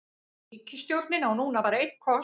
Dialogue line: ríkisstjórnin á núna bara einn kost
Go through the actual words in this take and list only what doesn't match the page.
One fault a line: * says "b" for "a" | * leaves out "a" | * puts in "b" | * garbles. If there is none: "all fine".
all fine